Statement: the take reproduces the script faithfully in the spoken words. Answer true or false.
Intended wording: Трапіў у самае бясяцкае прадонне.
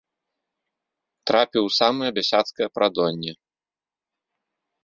true